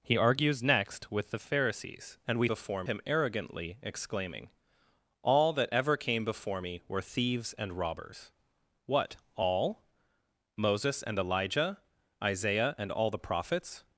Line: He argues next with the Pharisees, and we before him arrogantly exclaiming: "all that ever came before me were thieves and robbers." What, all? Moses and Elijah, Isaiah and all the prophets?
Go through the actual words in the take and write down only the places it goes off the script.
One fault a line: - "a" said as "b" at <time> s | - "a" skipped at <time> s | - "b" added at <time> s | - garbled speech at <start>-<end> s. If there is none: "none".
none